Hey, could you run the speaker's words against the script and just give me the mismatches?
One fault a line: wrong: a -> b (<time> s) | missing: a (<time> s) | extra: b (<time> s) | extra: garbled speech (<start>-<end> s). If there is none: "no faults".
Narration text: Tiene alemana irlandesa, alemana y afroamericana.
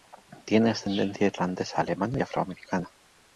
wrong: alemana -> ascendencia (0.7 s)